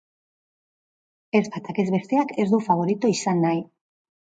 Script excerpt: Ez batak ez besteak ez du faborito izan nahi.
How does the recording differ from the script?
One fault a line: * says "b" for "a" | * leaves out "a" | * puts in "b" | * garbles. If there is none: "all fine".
all fine